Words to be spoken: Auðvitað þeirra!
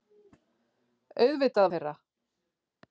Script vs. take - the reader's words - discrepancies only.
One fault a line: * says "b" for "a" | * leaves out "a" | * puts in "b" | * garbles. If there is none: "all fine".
all fine